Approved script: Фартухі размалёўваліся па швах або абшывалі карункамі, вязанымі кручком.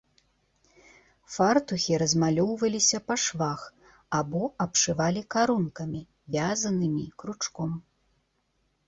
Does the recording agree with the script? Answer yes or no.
yes